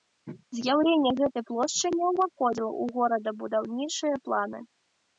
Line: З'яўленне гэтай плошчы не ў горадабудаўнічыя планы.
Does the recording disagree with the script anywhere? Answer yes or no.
yes